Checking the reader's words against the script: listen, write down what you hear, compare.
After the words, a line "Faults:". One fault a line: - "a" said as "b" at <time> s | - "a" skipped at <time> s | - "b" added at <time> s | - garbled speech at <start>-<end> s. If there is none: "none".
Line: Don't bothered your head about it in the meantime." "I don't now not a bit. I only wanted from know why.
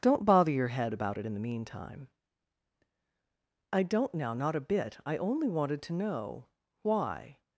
Don't bother your head about it in the meantime." "I don't now not a bit. I only wanted to know why.
Faults:
- "bothered" said as "bother" at 0.2 s
- "from" said as "to" at 5.8 s